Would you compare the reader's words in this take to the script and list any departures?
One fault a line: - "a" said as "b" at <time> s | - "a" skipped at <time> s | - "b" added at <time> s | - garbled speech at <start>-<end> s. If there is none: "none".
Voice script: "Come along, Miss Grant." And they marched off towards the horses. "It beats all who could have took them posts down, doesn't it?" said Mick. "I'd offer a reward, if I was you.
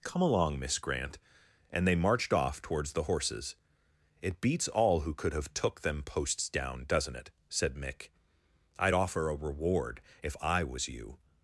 none